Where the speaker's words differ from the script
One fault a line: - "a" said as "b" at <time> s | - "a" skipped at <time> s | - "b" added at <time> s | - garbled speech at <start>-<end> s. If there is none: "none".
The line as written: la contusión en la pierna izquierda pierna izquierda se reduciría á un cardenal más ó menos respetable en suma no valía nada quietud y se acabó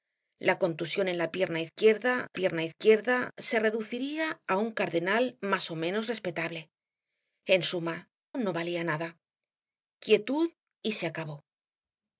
none